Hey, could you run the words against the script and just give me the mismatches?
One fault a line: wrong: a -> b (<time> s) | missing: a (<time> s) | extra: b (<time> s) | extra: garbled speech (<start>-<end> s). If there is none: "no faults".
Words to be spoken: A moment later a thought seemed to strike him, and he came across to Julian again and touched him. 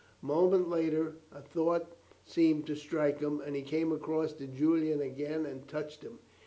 no faults